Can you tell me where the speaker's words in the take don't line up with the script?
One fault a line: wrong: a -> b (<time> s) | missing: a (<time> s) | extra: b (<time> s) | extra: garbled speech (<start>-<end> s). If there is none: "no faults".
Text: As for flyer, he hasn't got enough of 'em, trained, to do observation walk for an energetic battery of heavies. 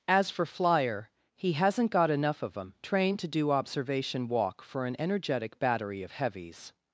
no faults